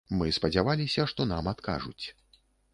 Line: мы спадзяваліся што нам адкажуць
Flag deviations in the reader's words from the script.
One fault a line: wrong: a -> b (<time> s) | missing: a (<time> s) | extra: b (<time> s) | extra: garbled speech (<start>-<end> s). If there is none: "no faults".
no faults